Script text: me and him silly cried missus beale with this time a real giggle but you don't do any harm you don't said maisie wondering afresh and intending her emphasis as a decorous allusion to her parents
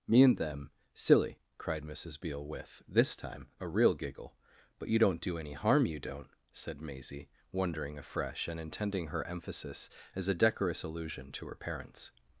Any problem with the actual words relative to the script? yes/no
yes